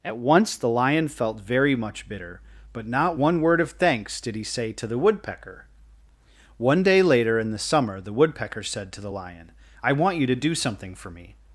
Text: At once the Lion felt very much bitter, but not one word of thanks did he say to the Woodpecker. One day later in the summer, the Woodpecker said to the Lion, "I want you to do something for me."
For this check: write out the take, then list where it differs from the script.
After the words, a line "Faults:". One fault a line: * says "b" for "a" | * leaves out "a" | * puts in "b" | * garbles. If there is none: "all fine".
At once the Lion felt very much bitter, but not one word of thanks did he say to the Woodpecker. One day later in the summer, the Woodpecker said to the Lion, "I want you to do something for me."
Faults:
all fine